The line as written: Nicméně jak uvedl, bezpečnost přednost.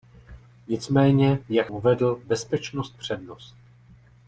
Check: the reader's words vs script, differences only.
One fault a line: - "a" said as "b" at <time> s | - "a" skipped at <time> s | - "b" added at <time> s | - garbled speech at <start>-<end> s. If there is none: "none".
none